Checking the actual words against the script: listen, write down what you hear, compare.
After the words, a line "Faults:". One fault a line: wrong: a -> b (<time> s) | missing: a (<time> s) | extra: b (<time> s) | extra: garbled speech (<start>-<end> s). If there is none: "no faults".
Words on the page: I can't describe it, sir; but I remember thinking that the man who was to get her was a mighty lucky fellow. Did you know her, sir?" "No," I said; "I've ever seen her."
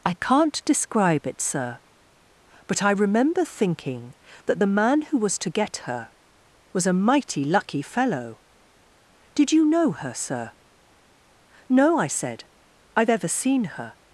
I can't describe it, sir; but I remember thinking that the man who was to get her was a mighty lucky fellow. Did you know her, sir?" "No," I said; "I've ever seen her."
Faults:
no faults